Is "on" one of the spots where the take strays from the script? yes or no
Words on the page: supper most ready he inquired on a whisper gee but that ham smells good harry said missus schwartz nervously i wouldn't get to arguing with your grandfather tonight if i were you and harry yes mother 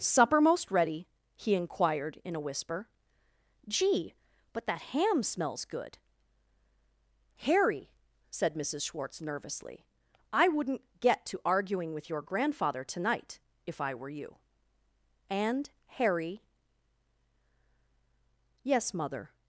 yes